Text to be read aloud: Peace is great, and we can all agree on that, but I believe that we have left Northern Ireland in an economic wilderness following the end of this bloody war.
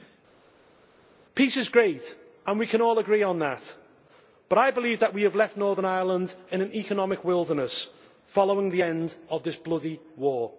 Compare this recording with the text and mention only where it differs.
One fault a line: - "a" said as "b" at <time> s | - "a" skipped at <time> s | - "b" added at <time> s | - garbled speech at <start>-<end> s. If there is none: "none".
none